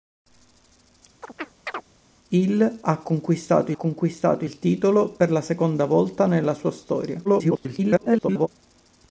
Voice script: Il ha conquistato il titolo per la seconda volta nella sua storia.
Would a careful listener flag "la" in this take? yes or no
no